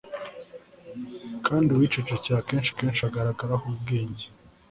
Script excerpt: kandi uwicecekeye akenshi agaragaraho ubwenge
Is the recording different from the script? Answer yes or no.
yes